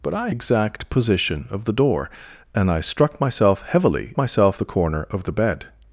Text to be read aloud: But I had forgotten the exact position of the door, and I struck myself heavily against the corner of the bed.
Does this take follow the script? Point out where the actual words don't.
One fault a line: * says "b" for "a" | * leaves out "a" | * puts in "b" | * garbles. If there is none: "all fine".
* leaves out "had forgotten the"
* says "myself" for "against"